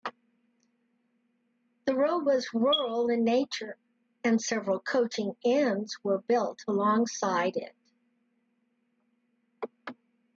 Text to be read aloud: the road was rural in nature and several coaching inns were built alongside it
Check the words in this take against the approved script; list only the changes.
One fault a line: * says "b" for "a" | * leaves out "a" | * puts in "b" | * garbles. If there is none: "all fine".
all fine